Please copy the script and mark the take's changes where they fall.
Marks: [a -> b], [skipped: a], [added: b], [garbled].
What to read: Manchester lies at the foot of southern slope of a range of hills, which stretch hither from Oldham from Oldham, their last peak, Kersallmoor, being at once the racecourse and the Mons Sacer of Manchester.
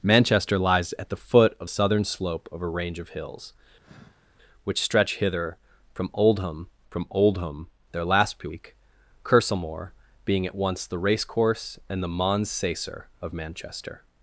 Manchester lies at the foot of southern slope of a range of hills, which stretch hither from Oldham from Oldham, their last peak, Kersallmoor, being at once the racecourse and the Mons Sacer of Manchester.